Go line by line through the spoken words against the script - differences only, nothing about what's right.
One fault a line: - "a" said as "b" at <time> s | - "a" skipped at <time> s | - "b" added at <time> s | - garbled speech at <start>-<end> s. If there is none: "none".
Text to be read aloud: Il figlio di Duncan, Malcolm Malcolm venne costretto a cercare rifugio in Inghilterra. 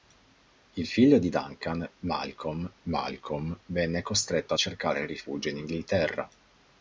none